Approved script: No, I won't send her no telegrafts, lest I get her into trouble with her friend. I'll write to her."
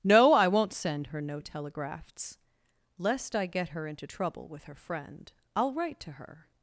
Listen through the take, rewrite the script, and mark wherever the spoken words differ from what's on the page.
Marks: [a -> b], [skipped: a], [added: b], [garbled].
No, I won't send her no telegrafts, lest I get her into trouble with her friend. I'll write to her."